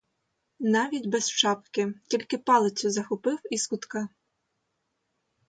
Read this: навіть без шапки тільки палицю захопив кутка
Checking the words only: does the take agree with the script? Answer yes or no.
no